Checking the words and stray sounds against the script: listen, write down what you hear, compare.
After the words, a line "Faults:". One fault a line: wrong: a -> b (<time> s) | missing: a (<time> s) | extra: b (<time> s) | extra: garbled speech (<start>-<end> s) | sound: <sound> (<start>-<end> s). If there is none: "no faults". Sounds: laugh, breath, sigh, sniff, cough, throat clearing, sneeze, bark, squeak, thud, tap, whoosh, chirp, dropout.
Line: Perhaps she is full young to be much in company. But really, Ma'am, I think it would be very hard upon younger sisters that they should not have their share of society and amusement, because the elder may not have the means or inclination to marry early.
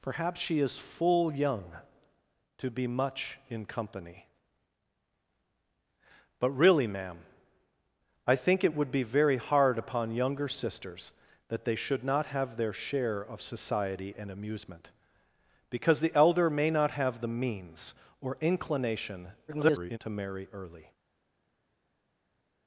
Perhaps she is full young to be much in company. But really, Ma'am, I think it would be very hard upon younger sisters that they should not have their share of society and amusement, because the elder may not have the means or inclination [garbled] to marry early.
Faults:
extra: garbled speech (19.5-20.0 s)